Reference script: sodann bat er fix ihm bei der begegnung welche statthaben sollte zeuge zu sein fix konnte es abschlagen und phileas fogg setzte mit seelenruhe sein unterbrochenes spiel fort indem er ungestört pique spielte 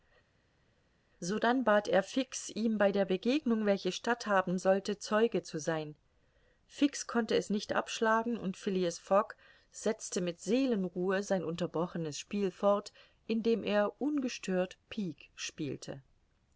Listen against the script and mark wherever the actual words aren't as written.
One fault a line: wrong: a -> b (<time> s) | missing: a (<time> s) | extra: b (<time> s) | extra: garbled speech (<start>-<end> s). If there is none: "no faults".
extra: nicht (7.5 s)